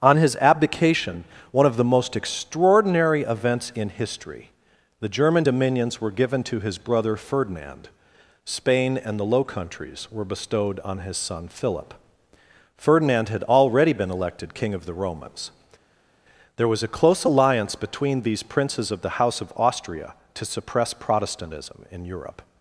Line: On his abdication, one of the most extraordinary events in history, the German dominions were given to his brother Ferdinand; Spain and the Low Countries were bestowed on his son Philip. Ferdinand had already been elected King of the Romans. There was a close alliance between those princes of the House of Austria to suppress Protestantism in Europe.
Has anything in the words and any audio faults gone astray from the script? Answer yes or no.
yes